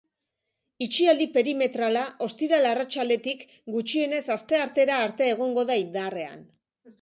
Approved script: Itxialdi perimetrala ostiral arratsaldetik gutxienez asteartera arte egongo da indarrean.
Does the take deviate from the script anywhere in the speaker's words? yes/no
no